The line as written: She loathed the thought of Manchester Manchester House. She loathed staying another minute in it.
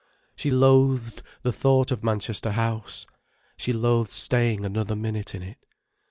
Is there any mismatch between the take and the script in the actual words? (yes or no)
yes